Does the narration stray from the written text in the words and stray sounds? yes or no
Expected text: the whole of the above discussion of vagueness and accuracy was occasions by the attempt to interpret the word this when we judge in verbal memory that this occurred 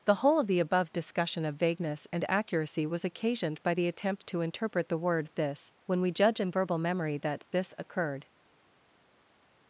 yes